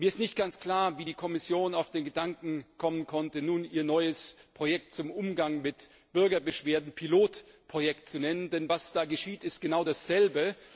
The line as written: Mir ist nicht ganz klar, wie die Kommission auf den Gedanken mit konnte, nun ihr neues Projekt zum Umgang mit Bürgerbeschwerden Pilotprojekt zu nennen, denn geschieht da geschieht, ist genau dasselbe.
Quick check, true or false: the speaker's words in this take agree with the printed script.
false